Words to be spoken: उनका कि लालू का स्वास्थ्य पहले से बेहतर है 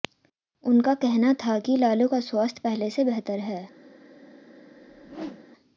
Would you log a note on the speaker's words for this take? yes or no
yes